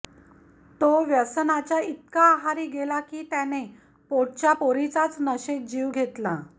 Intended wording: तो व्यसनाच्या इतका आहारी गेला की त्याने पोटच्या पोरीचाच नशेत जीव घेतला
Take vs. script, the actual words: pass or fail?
pass